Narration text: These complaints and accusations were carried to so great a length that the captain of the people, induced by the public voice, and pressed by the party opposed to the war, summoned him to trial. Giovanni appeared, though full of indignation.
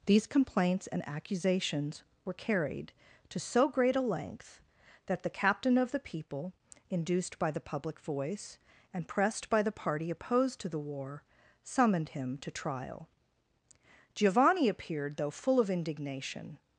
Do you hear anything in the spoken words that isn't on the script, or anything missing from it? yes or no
no